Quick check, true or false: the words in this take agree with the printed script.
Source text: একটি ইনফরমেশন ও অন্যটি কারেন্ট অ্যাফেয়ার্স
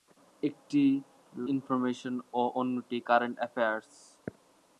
true